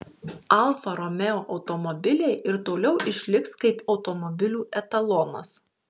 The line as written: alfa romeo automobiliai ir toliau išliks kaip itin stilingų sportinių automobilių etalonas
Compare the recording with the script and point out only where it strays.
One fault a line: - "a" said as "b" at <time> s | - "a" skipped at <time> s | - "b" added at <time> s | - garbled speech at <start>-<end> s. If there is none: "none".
- "itin stilingų sportinių" skipped at 3.8 s